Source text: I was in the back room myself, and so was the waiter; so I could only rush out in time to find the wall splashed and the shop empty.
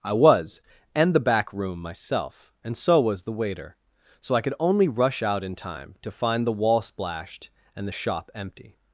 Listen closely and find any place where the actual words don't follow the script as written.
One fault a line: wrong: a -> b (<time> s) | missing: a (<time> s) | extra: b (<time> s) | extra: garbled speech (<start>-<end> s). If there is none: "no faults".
wrong: in -> and (0.9 s)